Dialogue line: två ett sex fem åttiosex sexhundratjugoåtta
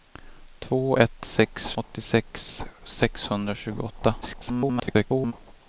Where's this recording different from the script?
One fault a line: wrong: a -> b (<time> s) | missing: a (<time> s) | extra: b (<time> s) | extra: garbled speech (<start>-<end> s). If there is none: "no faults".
missing: fem (1.7 s)
extra: garbled speech (4.2-5.3 s)